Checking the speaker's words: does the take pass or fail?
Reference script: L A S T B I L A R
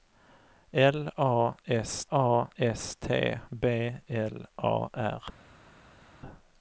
fail